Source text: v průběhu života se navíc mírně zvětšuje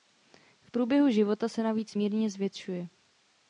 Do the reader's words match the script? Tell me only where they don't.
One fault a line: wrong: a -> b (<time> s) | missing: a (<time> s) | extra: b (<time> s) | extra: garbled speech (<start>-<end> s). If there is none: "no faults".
no faults